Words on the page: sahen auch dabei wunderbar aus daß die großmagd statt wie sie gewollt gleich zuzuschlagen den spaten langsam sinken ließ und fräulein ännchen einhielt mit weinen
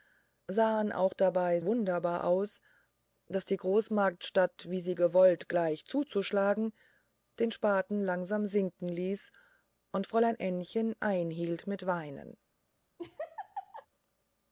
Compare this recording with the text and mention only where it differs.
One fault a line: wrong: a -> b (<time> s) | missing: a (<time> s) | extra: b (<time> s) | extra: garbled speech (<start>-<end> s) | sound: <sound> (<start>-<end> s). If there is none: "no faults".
sound: laugh (13.0-13.9 s)